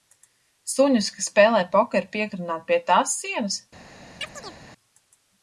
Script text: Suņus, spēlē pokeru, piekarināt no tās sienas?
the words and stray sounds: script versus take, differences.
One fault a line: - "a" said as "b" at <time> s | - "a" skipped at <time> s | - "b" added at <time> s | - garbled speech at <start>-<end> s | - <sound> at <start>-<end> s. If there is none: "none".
- "kas" added at 1.2 s
- "no" said as "pie" at 2.7 s
- chirp at 4.2-4.6 s